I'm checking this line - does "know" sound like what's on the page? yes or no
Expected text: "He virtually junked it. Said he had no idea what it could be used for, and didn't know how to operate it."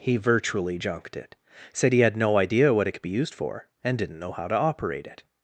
yes